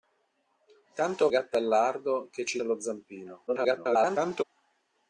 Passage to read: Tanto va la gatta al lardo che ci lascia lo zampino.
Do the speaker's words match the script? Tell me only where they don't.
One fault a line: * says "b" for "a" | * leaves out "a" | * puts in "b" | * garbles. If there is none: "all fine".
* leaves out "va la"
* leaves out "lascia"
* garbles